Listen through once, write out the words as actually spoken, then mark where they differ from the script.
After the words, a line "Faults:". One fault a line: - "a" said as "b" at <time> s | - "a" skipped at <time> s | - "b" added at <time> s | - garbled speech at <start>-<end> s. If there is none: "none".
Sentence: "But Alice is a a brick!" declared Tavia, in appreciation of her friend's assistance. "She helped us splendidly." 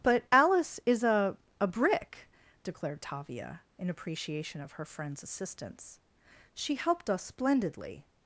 "But Alice is a a brick!" declared Tavia, in appreciation of her friend's assistance. "She helped us splendidly."
Faults:
none